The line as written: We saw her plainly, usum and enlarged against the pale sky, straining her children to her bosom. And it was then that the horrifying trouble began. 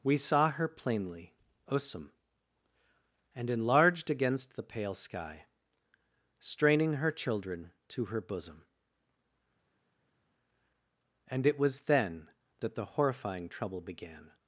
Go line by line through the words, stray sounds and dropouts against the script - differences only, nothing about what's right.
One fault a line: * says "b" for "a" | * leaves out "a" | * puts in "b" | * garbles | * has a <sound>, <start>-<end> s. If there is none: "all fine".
all fine